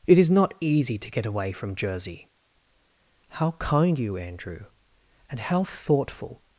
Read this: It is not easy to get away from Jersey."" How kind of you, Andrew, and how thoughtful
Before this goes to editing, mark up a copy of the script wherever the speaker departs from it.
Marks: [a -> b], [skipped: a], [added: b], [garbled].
It is not easy to get away from Jersey."" How kind [skipped: of] you, Andrew, and how thoughtful